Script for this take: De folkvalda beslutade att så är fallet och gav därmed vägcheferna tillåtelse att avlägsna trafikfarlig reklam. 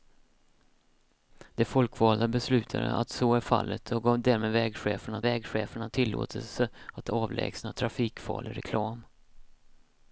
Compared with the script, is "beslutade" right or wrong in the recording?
right